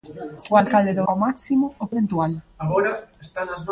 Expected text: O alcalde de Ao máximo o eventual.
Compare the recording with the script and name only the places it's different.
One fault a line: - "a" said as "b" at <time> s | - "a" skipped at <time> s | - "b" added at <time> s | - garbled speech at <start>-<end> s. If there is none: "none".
none